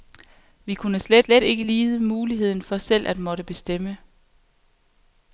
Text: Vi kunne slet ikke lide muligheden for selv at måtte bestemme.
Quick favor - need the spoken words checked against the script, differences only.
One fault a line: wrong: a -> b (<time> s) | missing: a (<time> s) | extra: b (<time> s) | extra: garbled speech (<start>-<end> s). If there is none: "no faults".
extra: slet (1.2 s)